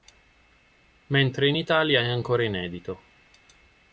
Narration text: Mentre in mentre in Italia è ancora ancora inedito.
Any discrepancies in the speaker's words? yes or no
yes